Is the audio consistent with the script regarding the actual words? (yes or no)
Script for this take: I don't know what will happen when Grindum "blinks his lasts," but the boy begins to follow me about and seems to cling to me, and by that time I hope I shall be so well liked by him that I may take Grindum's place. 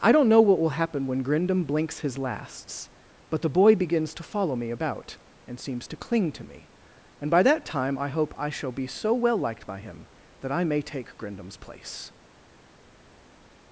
yes